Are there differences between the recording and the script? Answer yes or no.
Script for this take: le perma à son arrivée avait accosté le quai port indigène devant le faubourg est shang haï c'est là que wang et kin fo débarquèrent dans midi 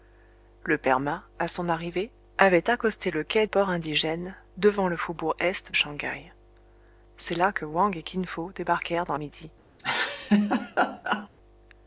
no